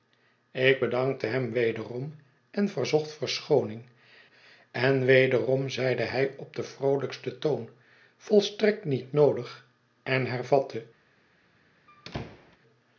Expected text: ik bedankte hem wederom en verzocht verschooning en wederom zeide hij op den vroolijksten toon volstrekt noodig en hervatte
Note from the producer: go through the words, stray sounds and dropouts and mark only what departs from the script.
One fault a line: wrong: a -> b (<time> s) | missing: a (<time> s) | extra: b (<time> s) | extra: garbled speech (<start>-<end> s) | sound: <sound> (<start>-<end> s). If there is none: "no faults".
extra: niet (8.8 s)
sound: squeak (11.9-12.6 s)